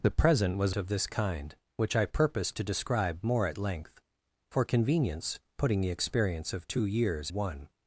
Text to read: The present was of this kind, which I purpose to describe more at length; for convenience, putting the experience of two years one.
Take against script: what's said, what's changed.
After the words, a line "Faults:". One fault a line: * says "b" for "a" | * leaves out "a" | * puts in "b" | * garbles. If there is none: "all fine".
The present was of this kind, which I purpose to describe more at length; for convenience, putting the experience of two years one.
Faults:
all fine